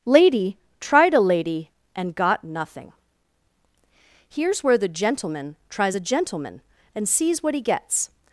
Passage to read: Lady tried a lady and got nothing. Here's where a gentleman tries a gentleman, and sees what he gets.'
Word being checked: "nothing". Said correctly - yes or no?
yes